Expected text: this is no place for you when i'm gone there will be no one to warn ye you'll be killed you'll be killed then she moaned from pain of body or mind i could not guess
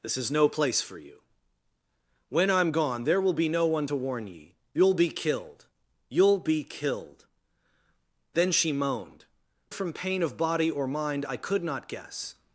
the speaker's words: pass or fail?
pass